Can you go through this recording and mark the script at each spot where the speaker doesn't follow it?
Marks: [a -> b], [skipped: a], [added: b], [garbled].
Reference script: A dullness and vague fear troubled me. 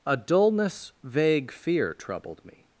A dullness [skipped: and] vague fear troubled me.